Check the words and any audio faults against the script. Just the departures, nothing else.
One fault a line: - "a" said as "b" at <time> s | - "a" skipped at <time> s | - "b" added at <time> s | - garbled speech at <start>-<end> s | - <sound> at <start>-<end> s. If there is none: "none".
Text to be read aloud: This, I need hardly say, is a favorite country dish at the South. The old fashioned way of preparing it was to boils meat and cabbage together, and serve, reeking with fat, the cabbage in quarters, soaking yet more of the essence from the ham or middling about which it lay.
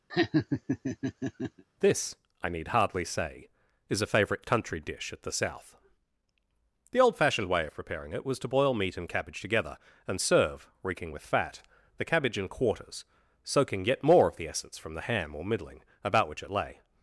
- laugh at 0.1-1.6 s
- "boils" said as "boil" at 8.5 s